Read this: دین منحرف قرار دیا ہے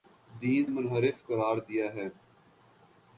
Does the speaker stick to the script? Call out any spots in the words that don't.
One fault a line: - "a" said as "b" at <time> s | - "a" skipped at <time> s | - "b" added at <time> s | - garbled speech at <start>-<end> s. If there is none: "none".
none